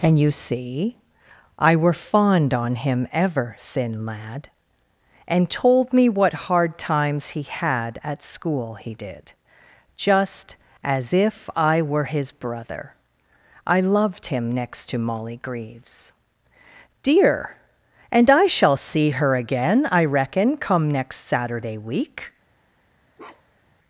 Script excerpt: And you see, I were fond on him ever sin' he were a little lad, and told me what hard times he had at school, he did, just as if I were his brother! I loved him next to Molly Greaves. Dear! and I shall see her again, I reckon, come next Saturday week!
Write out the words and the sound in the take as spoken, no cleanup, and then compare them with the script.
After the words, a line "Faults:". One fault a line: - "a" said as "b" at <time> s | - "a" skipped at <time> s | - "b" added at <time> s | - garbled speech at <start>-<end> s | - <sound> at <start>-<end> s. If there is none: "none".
And you see, I were fond on him ever sin' lad, and told me what hard times he had at school, he did, just as if I were his brother! I loved him next to Molly Greaves. Dear! and I shall see her again, I reckon, come next Saturday week!
Faults:
- "he were a little" skipped at 4.0 s
- bark at 23.2-23.8 s